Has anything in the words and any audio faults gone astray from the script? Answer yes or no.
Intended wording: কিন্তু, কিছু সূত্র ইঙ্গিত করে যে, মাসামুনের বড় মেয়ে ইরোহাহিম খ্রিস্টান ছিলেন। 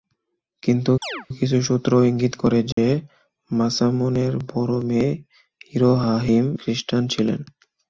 yes